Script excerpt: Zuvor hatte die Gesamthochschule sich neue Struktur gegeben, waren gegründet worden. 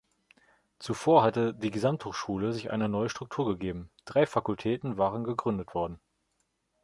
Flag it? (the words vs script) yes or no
yes